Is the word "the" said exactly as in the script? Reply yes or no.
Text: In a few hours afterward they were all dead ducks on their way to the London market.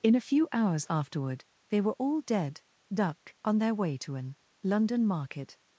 no